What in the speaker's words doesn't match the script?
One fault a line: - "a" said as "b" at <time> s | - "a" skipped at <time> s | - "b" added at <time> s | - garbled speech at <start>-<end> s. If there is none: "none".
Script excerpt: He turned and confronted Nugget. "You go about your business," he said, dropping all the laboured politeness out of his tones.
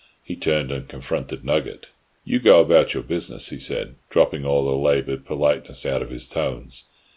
none